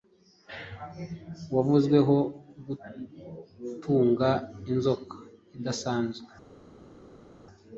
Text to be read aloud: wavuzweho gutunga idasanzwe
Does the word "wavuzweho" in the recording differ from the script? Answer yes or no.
no